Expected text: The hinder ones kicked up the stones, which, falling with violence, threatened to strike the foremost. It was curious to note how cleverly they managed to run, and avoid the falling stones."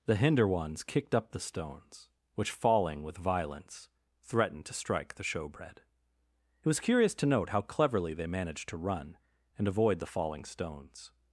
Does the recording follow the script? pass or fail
fail